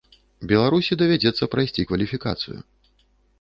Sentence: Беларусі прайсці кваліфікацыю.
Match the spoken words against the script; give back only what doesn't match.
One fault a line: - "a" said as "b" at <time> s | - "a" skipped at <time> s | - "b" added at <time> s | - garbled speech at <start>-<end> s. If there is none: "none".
- "давядзецца" added at 1.0 s